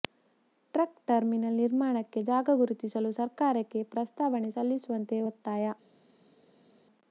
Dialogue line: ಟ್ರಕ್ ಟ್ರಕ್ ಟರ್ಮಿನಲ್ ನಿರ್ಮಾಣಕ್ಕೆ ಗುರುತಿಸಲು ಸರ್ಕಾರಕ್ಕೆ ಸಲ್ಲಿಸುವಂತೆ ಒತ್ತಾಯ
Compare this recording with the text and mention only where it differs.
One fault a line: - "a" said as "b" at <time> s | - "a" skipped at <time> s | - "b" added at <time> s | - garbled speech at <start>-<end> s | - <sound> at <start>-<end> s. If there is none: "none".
- "ಟ್ರಕ್" skipped at 0.9 s
- "ಜಾಗ" added at 2.3 s
- "ಪ್ರಸ್ತಾವನೆ" added at 3.9 s